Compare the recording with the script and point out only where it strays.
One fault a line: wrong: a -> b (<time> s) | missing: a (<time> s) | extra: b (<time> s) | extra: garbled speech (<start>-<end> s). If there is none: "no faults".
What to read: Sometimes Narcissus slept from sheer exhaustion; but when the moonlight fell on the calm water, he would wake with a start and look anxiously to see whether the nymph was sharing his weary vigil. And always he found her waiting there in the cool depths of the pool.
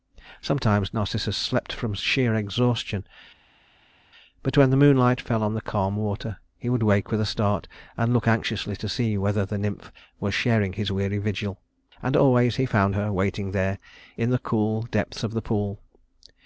no faults